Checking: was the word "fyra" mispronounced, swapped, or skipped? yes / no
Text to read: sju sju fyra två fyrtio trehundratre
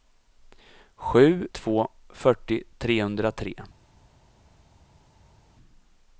yes